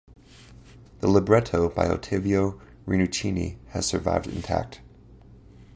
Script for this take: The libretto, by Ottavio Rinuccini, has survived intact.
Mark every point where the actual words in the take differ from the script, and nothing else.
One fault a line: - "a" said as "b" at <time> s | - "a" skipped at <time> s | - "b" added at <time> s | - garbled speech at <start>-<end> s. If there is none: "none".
none